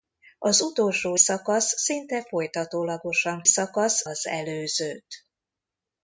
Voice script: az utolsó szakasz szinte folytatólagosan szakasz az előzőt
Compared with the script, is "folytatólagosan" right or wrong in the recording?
right